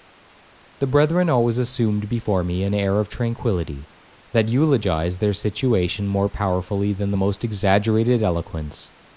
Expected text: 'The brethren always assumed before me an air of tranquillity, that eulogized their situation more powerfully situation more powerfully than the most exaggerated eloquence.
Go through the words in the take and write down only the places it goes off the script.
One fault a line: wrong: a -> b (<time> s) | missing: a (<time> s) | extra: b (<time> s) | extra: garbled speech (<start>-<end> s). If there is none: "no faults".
missing: situation more powerfully (6.9 s)